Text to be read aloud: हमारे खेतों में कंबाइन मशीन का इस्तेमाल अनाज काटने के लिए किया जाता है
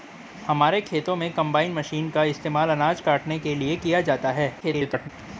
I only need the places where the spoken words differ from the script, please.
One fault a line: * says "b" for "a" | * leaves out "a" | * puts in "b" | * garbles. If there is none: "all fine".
* garbles